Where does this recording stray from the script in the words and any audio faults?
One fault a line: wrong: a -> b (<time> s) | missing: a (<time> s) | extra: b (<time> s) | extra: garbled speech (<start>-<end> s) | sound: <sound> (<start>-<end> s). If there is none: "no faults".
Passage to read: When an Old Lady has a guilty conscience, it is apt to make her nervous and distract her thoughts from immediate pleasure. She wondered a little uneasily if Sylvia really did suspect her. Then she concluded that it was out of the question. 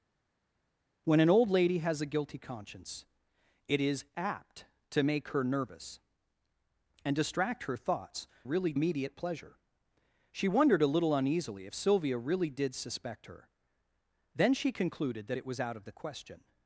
wrong: from -> really (8.4 s)